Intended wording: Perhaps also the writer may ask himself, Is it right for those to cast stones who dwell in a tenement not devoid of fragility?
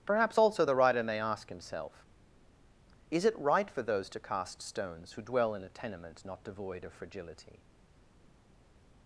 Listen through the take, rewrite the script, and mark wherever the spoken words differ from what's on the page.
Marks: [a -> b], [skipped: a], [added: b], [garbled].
Perhaps also the writer may ask himself, Is it right for those to cast stones who dwell in a tenement not devoid of fragility?